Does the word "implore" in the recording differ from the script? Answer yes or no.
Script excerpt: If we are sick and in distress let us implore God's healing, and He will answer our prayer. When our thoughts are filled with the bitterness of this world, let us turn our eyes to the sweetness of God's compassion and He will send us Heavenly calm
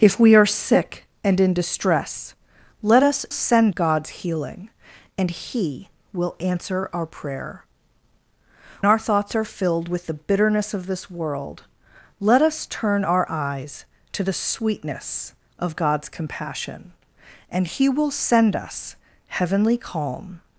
yes